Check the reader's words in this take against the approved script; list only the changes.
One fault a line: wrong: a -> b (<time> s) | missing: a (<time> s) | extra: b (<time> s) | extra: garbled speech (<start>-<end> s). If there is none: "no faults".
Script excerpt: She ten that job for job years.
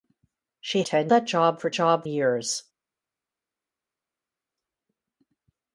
no faults